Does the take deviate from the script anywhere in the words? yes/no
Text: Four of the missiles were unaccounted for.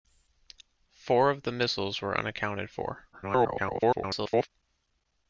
yes